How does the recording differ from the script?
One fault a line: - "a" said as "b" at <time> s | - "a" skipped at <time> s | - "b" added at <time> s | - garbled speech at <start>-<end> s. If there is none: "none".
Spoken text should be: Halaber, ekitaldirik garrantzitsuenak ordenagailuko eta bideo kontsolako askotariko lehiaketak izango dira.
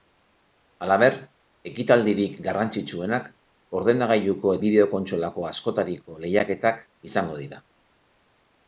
- "eta" skipped at 4.5 s